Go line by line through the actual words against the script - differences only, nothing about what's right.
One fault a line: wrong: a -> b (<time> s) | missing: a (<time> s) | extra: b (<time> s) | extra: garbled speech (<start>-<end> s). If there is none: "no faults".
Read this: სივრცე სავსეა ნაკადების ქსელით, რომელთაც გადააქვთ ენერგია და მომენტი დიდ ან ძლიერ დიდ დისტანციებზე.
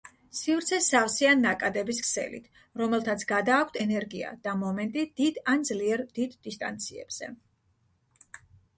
no faults